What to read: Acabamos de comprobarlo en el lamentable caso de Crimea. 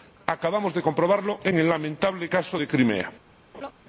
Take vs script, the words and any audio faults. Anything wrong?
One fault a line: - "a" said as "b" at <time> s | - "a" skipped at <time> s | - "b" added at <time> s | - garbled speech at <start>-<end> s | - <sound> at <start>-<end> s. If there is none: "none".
- laugh at 3.5-3.7 s